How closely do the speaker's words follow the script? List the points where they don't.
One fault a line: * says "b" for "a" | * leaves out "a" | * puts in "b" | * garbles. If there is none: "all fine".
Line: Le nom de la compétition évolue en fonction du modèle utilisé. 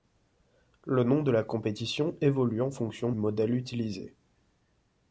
* leaves out "du"